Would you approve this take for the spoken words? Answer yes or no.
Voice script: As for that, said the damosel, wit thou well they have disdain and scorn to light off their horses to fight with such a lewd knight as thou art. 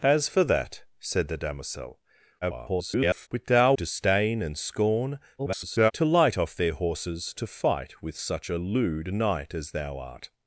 no